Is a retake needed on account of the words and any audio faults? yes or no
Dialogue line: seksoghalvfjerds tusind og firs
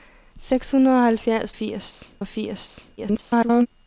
yes